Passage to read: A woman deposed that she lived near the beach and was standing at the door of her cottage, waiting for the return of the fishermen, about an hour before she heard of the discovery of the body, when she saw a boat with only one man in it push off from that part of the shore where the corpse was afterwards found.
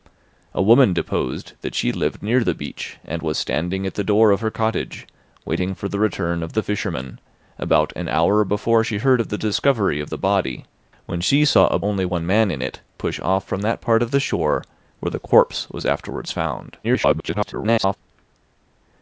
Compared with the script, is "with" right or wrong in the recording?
wrong